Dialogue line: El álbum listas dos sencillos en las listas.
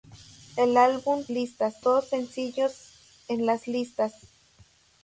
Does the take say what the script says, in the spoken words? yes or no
yes